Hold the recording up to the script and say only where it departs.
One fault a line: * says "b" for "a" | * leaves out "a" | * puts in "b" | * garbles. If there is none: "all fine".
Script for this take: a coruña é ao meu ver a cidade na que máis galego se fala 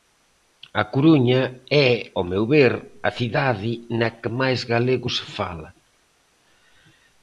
all fine